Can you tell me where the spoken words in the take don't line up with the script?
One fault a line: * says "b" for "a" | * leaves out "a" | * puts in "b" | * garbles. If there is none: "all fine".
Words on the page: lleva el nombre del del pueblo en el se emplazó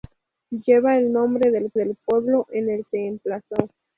all fine